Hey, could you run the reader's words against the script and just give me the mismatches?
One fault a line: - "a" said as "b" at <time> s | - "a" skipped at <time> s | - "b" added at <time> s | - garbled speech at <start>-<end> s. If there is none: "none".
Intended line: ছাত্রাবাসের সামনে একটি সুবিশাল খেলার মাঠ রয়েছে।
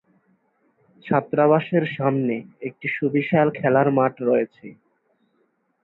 none